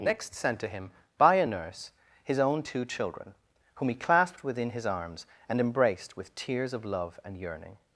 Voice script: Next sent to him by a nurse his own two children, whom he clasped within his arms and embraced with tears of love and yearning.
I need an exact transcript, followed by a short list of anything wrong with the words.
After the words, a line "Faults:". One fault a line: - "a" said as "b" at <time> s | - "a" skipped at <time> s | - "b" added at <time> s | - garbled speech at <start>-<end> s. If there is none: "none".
Next sent to him by a nurse his own two children, whom he clasped within his arms and embraced with tears of love and yearning.
Faults:
none